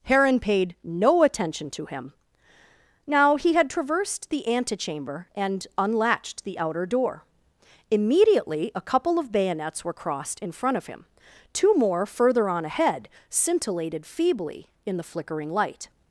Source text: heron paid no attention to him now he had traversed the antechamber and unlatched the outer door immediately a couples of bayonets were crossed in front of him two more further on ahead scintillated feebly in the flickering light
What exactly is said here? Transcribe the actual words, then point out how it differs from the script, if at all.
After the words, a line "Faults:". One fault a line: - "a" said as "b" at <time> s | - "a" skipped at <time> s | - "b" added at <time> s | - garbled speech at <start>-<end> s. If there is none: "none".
heron paid no attention to him now he had traversed the antechamber and unlatched the outer door immediately a couple of bayonets were crossed in front of him two more further on ahead scintillated feebly in the flickering light
Faults:
- "couples" said as "couple" at 8.8 s